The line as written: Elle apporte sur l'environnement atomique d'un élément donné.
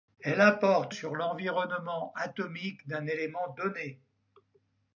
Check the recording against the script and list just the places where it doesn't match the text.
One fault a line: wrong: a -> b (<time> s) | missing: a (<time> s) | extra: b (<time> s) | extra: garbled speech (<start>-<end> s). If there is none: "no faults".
no faults